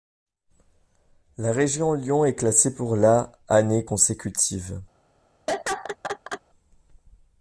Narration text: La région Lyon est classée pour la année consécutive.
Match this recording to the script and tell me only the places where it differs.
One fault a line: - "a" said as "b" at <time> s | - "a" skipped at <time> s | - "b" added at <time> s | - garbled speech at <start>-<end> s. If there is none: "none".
none